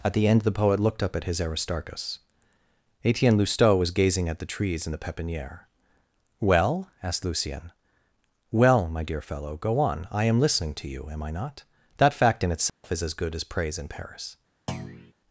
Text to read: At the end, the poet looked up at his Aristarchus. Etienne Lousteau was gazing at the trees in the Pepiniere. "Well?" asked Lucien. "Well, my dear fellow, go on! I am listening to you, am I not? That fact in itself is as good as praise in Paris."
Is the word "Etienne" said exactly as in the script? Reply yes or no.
yes